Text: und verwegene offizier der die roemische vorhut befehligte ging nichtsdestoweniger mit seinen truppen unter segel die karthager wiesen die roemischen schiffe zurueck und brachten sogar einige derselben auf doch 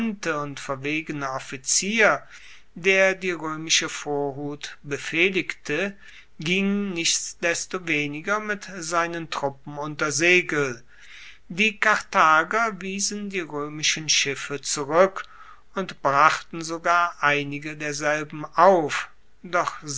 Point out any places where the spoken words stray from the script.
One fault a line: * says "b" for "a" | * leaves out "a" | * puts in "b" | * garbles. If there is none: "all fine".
all fine